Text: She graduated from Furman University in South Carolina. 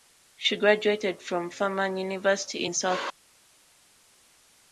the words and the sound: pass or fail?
pass